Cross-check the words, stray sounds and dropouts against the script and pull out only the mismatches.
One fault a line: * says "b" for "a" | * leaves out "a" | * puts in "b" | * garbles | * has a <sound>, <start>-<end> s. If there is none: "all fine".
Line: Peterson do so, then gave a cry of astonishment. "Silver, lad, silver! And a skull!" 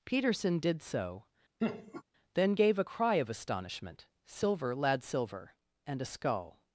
* says "did" for "do"
* has a laugh, 1.6-2.0 s